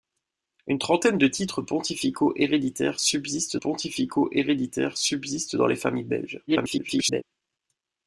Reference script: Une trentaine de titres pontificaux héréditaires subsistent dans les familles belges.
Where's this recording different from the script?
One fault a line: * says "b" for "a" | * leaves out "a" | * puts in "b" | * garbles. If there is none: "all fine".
* puts in "pontificaux héréditaires subsistent"
* garbles